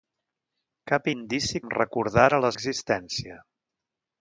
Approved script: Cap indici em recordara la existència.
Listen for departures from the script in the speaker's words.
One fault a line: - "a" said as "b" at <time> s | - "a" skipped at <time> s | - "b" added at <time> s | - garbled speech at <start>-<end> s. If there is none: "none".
none